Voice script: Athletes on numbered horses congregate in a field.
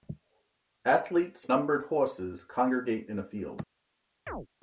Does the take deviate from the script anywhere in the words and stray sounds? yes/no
yes